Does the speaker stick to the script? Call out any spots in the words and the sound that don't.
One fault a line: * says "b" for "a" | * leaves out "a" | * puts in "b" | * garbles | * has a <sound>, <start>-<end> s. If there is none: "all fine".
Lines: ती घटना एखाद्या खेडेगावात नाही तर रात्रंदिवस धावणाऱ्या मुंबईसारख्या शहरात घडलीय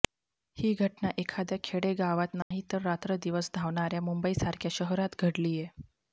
* says "ही" for "ती"
* has a dropout, 2.4-2.5 s